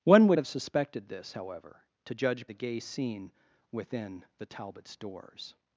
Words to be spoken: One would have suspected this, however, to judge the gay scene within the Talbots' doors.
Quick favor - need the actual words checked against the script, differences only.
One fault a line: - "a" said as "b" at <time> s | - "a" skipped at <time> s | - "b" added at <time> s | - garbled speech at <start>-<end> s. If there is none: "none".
none